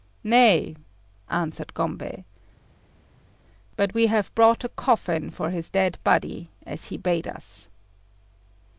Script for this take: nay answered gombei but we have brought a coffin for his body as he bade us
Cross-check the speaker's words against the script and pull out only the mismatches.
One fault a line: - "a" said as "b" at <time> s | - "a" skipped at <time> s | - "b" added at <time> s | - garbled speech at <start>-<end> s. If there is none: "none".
- "dead" added at 5.7 s